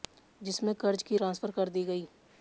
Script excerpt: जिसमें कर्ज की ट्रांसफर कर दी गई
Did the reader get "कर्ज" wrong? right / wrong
right